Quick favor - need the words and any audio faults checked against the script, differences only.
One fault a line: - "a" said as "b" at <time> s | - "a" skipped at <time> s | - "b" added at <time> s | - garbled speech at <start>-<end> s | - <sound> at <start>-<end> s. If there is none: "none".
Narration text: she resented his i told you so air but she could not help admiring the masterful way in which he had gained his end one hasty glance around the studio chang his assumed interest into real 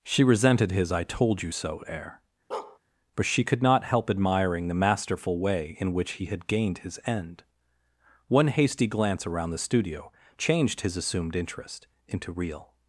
- bark at 2.5-2.8 s
- "chang" said as "changed" at 10.4 s